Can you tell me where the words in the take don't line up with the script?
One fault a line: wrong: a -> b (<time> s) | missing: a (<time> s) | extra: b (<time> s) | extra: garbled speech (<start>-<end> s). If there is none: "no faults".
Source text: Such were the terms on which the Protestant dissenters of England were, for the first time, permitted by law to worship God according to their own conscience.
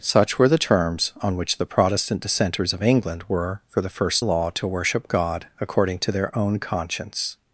missing: time permitted by (4.2 s)